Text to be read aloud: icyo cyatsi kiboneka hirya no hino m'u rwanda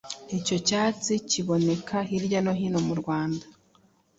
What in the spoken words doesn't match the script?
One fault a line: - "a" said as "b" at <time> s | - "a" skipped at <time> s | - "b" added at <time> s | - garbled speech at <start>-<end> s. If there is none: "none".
none